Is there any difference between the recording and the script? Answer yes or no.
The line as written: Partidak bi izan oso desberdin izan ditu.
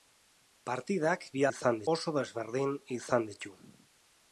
no